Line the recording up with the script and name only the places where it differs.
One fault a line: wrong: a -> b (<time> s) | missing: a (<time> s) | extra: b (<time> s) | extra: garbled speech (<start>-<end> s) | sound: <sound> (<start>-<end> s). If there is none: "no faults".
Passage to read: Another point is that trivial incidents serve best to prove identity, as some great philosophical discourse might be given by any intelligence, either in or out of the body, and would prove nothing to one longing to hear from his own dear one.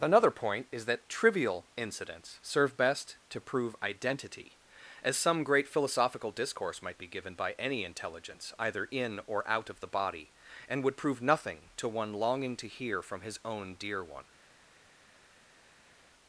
no faults